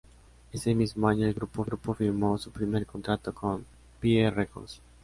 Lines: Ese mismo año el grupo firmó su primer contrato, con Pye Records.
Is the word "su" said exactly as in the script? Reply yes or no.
yes